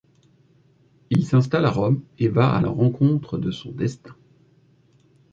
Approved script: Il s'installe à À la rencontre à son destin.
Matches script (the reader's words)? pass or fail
fail